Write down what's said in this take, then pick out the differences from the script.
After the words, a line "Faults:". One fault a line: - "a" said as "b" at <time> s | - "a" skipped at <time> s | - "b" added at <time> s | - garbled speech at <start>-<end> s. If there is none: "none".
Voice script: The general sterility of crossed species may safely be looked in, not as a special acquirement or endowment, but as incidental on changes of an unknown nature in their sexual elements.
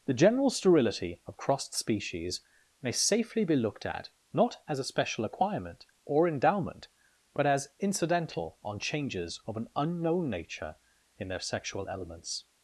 The general sterility of crossed species may safely be looked at, not as a special acquirement or endowment, but as incidental on changes of an unknown nature in their sexual elements.
Faults:
- "in" said as "at" at 3.8 s